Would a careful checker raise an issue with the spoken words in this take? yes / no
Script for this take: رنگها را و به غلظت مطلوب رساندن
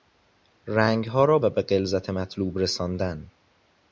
no